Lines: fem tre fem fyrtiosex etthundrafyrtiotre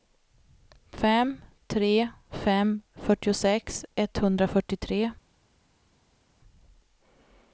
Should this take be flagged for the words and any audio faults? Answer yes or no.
no